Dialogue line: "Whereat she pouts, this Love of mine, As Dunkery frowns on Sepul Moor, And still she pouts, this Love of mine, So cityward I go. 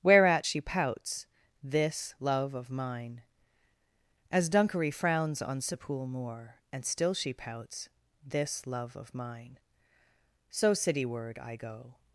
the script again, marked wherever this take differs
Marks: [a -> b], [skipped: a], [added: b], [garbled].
"Whereat she pouts, this Love of mine, As Dunkery frowns on Sepul Moor, And still she pouts, this Love of mine, So cityward I go.